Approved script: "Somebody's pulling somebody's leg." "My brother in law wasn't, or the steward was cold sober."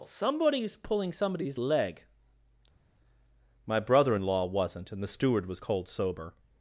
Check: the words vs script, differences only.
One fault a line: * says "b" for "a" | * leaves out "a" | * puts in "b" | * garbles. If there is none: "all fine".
* says "and" for "or"